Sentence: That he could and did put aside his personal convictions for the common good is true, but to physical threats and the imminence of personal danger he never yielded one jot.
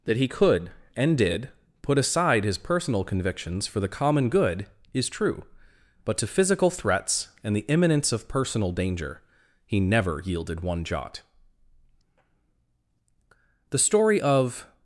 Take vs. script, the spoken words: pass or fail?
fail